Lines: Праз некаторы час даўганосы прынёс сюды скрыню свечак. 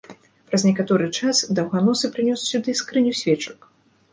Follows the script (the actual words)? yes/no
yes